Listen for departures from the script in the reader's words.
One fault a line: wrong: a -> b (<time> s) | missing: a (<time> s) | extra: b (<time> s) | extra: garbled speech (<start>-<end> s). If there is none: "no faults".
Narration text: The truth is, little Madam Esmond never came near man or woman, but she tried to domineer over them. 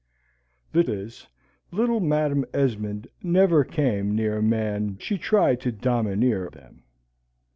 missing: truth (0.8 s)
missing: or woman but (5.0 s)
missing: over (6.5 s)